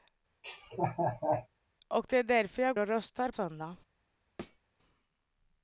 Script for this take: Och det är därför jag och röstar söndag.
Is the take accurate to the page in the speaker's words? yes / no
yes